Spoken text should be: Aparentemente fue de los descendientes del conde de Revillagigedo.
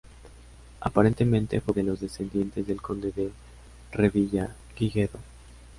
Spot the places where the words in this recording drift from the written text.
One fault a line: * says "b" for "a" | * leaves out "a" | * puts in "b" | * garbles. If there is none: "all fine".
all fine